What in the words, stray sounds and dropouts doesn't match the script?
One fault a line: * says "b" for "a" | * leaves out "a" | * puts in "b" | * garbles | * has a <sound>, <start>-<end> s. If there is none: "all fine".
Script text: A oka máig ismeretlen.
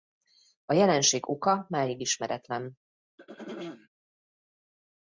* puts in "jelenség"
* has a throat clearing, 3.2-3.9 s